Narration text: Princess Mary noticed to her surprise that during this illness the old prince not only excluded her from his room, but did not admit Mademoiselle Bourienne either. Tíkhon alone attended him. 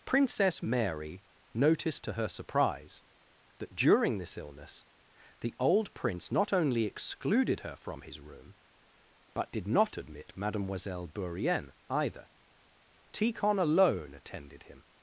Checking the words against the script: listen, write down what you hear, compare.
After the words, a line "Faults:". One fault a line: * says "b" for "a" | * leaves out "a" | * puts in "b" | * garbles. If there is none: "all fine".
Princess Mary noticed to her surprise that during this illness the old prince not only excluded her from his room, but did not admit Mademoiselle Bourienne either. Tíkhon alone attended him.
Faults:
all fine